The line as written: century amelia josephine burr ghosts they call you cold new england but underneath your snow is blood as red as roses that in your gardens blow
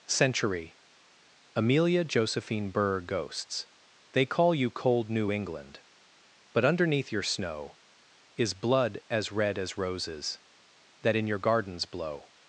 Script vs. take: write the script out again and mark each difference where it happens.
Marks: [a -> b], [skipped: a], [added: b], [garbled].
century amelia josephine burr ghosts they call you cold new england but underneath your snow is blood as red as roses that in your gardens blow